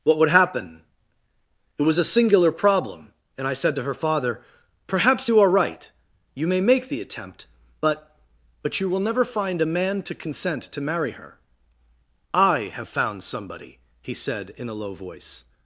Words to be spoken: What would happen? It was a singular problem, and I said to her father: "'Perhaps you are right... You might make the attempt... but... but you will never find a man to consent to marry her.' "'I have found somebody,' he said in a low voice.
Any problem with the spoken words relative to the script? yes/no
yes